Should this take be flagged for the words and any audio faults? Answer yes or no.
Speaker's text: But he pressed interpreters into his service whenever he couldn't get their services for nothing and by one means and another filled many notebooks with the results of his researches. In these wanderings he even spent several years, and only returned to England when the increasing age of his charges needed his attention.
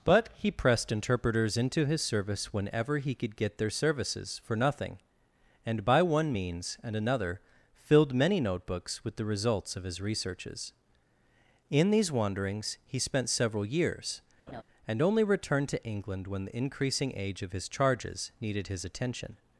yes